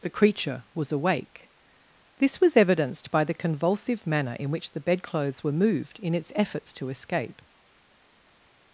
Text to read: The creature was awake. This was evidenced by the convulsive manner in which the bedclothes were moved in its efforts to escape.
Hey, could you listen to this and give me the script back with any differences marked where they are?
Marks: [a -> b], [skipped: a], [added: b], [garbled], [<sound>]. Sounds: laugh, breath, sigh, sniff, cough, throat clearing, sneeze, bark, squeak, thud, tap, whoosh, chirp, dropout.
The creature was awake. This was evidenced by the convulsive manner in which the bedclothes were moved in its efforts to escape.